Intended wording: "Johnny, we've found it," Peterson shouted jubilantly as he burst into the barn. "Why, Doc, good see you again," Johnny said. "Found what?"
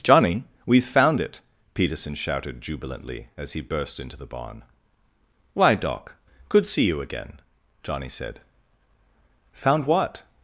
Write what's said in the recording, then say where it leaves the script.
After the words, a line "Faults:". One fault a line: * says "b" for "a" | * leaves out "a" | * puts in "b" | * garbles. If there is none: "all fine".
"Johnny, we've found it," Peterson shouted jubilantly as he burst into the barn. "Why, Doc, good see you again," Johnny said. "Found what?"
Faults:
all fine